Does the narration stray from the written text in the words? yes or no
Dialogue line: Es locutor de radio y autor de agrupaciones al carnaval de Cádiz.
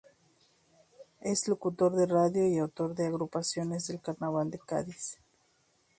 yes